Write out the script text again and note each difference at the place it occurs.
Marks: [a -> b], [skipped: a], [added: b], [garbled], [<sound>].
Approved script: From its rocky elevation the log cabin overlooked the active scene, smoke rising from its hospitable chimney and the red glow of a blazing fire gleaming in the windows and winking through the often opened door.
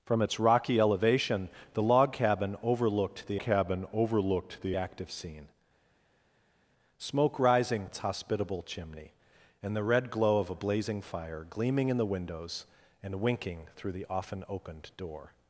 From its rocky elevation the log cabin overlooked the [added: cabin overlooked the] active scene, smoke rising [skipped: from] its hospitable chimney and the red glow of a blazing fire gleaming in the windows and winking through the often opened door.